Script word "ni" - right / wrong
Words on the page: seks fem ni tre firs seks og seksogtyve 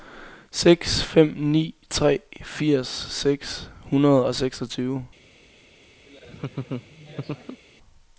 right